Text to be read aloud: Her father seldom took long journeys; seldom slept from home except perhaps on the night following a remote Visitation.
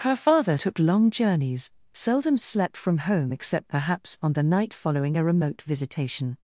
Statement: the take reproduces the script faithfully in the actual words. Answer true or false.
false